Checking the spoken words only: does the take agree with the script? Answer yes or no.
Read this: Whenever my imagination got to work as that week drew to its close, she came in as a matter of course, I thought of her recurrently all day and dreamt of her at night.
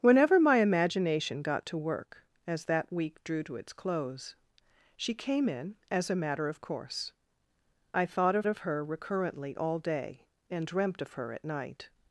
no